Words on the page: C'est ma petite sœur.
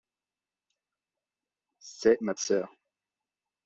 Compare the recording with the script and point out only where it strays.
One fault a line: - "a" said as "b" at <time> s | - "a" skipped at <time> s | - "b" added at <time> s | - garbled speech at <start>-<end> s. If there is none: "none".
- "petite" skipped at 2.3 s